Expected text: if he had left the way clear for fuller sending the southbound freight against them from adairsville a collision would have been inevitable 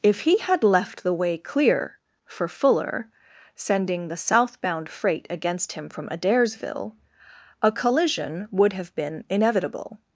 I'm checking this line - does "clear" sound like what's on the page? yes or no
yes